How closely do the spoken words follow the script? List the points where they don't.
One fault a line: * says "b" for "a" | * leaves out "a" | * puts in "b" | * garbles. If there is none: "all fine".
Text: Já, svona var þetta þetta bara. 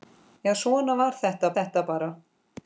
all fine